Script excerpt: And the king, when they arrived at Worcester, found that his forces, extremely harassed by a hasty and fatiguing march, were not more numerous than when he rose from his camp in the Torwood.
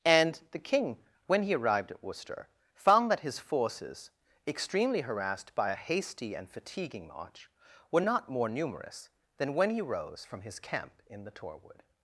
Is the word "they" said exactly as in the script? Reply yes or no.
no